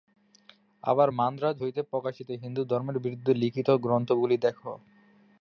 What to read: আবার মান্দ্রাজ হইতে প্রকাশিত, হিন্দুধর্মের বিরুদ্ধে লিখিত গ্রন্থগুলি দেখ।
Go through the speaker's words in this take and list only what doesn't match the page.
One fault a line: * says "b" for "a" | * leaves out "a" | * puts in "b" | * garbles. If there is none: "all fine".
all fine